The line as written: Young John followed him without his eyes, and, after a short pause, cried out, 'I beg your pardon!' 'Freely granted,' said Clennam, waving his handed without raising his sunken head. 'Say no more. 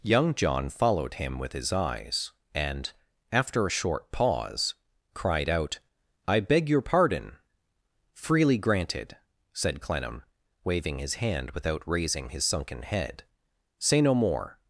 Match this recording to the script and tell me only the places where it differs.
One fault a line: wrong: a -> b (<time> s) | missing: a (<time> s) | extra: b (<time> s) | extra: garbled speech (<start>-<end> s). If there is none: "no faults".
wrong: without -> with (1.4 s)
wrong: handed -> hand (11.2 s)